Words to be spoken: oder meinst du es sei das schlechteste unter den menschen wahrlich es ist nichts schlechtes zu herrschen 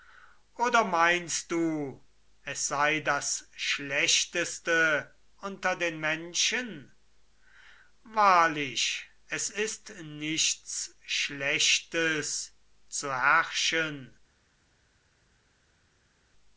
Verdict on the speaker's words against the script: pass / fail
pass